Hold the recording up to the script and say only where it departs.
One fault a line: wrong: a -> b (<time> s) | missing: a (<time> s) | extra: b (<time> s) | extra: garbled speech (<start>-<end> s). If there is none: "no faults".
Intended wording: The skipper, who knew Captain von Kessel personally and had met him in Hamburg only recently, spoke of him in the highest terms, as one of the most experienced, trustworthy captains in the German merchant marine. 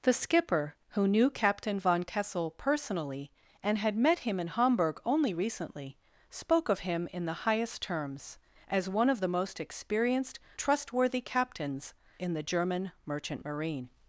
no faults